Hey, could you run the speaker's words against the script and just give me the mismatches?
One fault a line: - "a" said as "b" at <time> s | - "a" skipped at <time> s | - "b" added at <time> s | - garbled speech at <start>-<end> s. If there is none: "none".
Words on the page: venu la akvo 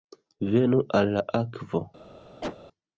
- "al" added at 1.0 s